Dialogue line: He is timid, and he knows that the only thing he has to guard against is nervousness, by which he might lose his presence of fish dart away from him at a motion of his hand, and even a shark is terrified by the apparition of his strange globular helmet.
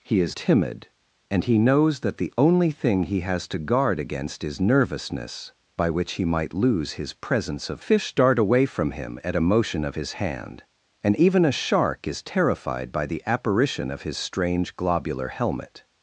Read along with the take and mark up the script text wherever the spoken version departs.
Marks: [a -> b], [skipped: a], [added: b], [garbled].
He is timid, and he knows that the only thing he has to guard against is nervousness, by which he might lose his presence of fish dart away from him at a motion of his hand, and even a shark is terrified by the apparition of his strange globular helmet.